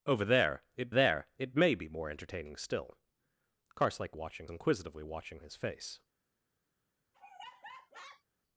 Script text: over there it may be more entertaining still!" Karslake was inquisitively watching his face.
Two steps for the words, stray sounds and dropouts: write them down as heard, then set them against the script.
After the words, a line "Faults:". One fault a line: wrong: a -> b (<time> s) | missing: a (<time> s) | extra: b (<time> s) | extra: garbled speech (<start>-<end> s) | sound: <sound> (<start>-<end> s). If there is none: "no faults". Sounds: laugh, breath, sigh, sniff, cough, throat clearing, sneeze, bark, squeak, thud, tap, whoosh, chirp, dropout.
over there it there it may be more entertaining still!" Karslake watching inquisitively watching his face.
Faults:
extra: there it (0.9 s)
wrong: was -> watching (4.1 s)
sound: laugh (7.1-8.2 s)